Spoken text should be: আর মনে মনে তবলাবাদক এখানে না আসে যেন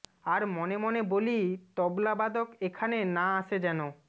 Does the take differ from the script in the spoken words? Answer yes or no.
yes